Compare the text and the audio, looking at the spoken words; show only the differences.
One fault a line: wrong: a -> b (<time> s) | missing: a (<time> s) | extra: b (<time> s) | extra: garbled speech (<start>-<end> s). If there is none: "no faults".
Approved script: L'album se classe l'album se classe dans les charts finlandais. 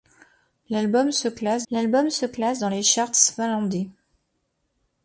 no faults